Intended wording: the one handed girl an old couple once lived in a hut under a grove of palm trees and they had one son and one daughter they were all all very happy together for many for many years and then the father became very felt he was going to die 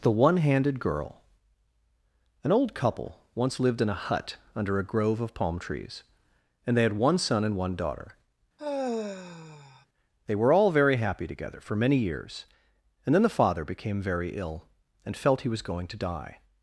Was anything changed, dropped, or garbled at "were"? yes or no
no